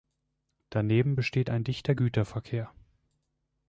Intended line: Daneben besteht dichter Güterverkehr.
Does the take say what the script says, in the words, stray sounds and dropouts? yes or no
no